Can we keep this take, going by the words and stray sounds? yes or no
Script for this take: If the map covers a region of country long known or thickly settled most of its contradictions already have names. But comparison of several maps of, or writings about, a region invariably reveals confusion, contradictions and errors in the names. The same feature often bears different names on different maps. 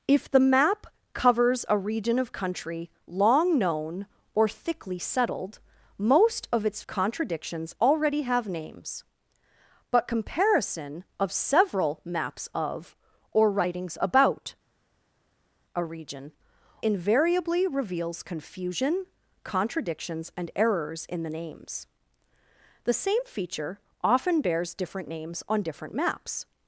yes